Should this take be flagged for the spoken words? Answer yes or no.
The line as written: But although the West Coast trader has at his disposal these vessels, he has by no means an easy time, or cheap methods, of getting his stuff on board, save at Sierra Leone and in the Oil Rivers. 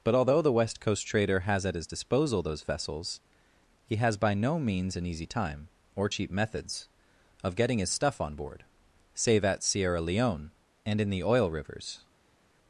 yes